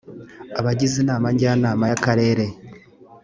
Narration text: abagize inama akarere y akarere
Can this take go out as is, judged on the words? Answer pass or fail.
fail